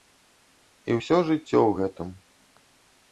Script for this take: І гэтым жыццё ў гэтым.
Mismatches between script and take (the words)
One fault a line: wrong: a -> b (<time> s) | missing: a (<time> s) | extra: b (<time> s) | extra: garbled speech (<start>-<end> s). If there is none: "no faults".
wrong: гэтым -> ўсё (1.0 s)